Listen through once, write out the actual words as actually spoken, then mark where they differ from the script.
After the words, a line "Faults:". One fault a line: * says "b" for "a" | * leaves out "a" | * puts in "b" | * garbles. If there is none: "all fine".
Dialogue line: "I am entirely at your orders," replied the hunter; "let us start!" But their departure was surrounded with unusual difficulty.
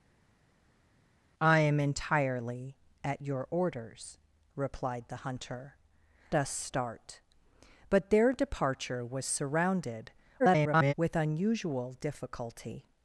"I am entirely at your orders," replied the hunter; "us start!" But their departure was surrounded [garbled] with unusual difficulty.
Faults:
* leaves out "let"
* garbles